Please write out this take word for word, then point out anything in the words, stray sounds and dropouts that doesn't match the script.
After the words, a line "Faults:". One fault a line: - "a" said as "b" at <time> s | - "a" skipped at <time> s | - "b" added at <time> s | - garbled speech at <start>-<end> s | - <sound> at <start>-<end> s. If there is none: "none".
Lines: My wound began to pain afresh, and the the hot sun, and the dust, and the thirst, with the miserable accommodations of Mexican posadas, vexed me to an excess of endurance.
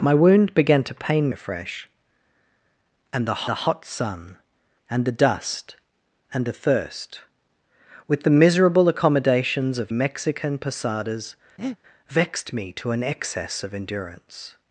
My wound began to pain afresh, and the the hot sun, and the dust, and the thirst, with the miserable accommodations of Mexican posadas, vexed me to an excess of endurance.
Faults:
- breath at 11.6-11.8 s